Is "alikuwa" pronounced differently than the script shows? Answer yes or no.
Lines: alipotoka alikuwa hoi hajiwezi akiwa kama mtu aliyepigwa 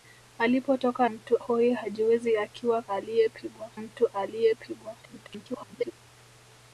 yes